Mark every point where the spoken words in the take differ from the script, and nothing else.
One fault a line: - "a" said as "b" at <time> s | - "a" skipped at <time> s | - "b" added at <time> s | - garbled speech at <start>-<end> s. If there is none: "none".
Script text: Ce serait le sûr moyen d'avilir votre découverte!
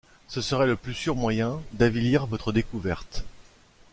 - "plus" added at 0.8 s